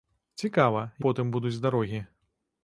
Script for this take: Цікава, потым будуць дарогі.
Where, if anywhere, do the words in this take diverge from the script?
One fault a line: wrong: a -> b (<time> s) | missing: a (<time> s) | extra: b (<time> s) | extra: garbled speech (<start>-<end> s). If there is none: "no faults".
no faults